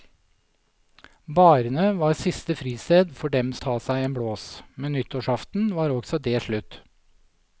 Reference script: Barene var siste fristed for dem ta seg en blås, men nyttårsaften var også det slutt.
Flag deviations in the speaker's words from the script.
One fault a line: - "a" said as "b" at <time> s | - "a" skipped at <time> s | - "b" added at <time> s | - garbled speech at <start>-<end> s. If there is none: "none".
none